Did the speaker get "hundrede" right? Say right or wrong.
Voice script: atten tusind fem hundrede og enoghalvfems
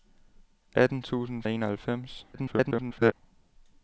wrong